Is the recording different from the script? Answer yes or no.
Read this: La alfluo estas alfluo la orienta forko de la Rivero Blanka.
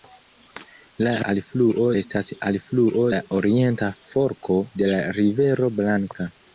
no